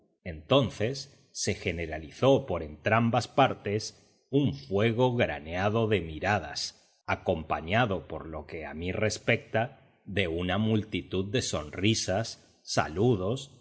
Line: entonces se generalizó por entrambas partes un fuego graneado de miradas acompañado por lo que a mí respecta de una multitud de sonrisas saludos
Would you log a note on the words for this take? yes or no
no